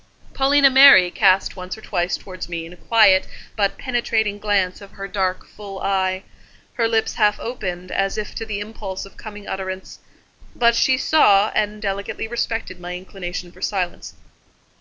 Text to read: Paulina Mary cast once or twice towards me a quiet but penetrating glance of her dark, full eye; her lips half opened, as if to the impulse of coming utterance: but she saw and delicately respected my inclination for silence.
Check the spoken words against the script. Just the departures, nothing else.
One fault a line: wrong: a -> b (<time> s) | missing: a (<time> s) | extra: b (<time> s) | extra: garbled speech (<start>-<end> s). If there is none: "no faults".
no faults